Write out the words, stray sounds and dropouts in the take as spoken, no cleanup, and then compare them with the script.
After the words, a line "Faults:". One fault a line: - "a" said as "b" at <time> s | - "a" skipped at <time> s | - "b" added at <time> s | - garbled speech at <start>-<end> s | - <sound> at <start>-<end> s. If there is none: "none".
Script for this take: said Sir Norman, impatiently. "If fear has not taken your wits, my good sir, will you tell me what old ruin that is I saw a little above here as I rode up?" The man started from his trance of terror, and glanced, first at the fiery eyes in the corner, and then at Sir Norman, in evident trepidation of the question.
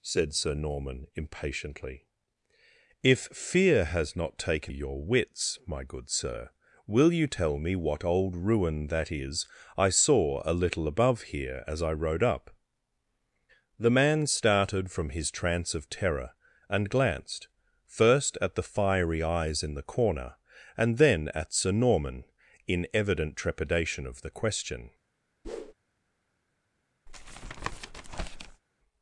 said Sir Norman, impatiently. "If fear has not taken your wits, my good sir, will you tell me what old ruin that is I saw a little above here as I rode up?" The man started from his trance of terror, and glanced, first at the fiery eyes in the corner, and then at Sir Norman, in evident trepidation of the question.
Faults:
- whoosh at 25.4-25.7 s
- tap at 27.1-28.6 s